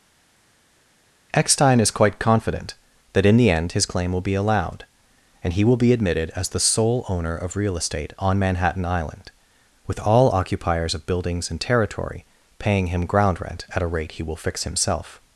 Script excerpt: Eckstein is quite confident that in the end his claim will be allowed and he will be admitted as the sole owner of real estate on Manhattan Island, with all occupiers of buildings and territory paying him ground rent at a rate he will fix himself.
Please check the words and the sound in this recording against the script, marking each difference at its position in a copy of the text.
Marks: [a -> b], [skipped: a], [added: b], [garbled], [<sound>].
Eckstein is quite confident that in the end his claim will be allowed and he will be admitted as the sole owner of real estate on Manhattan Island, with all occupiers of buildings and territory paying him ground rent at a rate he will fix himself.